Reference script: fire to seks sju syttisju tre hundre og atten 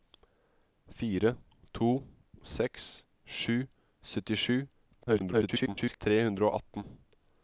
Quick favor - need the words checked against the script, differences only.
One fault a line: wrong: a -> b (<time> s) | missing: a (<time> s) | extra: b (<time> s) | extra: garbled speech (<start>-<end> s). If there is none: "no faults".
extra: garbled speech (5.0-6.0 s)